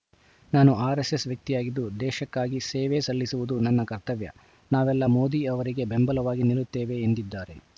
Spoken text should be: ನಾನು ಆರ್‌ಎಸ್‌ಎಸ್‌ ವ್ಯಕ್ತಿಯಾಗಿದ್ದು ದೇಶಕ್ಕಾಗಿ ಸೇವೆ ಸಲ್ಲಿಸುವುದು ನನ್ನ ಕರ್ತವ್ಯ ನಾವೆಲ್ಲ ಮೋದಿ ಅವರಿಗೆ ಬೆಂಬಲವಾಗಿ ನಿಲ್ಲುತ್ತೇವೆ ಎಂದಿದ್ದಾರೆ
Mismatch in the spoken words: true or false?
false